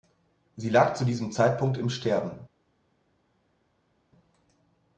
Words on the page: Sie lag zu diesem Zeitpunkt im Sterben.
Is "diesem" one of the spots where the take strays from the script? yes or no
no